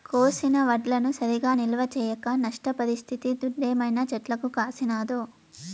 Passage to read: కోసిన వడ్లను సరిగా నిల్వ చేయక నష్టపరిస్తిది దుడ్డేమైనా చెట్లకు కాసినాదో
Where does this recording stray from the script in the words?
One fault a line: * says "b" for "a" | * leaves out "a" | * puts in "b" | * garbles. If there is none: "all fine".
all fine